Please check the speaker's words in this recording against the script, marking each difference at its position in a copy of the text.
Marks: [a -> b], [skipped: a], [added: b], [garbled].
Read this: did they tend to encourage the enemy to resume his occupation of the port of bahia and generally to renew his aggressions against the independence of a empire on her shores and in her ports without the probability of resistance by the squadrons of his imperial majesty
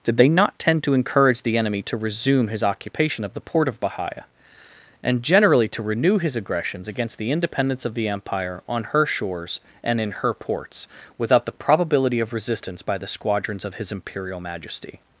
did they [added: not] tend to encourage the enemy to resume his occupation of the port of bahia and generally to renew his aggressions against the independence of [a -> the] empire on her shores and in her ports without the probability of resistance by the squadrons of his imperial majesty